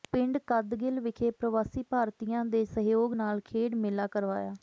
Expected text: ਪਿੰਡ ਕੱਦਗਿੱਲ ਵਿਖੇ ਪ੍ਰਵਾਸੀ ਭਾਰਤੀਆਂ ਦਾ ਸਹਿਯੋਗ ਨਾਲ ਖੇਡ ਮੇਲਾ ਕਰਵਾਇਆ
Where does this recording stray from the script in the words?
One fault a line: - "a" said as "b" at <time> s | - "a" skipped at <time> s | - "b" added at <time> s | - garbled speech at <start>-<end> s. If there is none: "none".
- "ਦਾ" said as "ਦੇ" at 2.5 s